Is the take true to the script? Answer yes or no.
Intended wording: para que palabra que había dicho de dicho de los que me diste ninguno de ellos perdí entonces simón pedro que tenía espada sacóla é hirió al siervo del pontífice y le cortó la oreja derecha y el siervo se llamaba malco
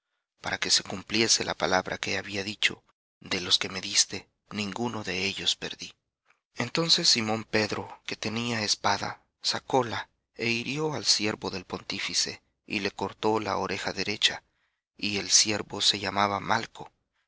no